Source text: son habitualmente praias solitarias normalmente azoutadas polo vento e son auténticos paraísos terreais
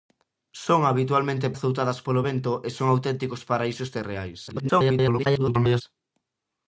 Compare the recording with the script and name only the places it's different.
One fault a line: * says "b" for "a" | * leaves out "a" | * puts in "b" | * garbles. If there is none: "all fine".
* leaves out "praias solitarias normalmente"
* garbles